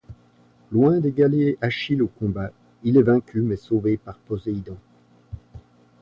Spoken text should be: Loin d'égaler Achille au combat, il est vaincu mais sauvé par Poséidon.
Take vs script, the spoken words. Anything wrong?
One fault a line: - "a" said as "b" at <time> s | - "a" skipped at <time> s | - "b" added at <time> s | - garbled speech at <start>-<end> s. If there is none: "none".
none